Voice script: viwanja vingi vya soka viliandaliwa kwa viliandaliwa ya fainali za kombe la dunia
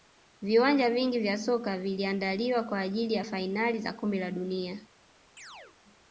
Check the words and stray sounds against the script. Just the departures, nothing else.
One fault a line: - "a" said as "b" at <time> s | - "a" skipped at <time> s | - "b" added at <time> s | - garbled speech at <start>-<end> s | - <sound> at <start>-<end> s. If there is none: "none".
- "viliandaliwa" said as "ajili" at 2.8 s
- chirp at 5.4-5.8 s